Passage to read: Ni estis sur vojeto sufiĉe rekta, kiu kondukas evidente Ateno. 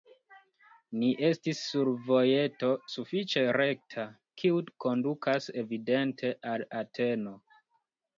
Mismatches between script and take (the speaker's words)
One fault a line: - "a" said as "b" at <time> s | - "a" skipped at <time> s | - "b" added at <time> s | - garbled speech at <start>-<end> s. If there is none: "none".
- "al" added at 6.5 s